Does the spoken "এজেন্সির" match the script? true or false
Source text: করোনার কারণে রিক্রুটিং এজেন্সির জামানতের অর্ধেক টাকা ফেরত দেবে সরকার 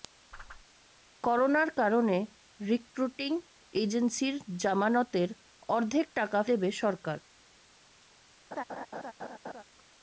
true